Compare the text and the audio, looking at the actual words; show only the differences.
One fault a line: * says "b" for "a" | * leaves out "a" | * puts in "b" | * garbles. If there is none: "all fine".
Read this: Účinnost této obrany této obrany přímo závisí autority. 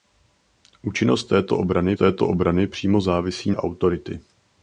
all fine